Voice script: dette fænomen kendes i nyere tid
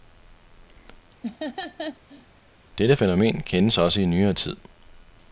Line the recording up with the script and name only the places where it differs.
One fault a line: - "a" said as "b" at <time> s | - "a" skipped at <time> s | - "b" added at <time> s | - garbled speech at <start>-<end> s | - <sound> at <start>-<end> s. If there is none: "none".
- laugh at 1.2-2.3 s
- "også" added at 3.8 s